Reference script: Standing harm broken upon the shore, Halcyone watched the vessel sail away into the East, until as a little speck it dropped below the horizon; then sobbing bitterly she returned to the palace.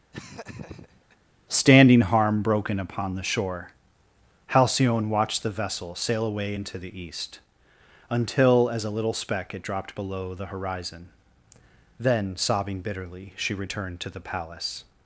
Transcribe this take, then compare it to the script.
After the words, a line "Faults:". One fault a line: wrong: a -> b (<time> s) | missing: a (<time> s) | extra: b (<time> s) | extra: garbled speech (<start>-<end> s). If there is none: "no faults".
Standing harm broken upon the shore, Halcyone watched the vessel sail away into the East, until as a little speck it dropped below the horizon; then sobbing bitterly she returned to the palace.
Faults:
no faults